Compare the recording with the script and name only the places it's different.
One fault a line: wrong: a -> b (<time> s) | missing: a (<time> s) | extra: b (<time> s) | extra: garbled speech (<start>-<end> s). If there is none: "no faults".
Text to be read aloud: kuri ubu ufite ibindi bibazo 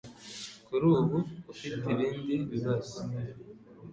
no faults